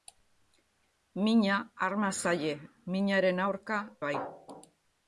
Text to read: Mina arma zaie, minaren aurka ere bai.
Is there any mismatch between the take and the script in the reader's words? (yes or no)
yes